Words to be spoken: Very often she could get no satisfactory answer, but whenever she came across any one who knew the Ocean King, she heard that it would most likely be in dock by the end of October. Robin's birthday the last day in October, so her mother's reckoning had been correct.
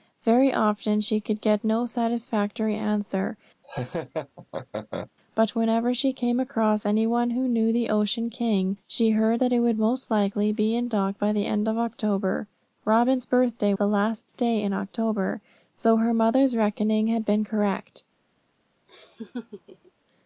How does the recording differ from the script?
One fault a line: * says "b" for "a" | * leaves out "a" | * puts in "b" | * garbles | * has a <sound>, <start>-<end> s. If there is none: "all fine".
* has a laugh, 3.6-5.1 s
* has a laugh, 18.9-19.9 s